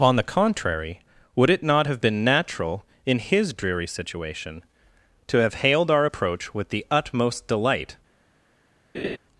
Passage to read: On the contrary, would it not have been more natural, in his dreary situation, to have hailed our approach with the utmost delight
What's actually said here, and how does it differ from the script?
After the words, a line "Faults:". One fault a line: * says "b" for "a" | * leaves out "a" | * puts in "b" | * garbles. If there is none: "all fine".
On the contrary, would it not have been natural, in his dreary situation, to have hailed our approach with the utmost delight
Faults:
* leaves out "more"